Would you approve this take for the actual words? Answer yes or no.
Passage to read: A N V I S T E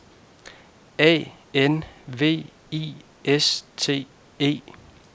yes